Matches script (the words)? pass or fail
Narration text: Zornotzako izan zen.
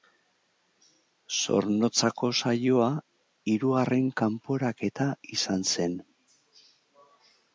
fail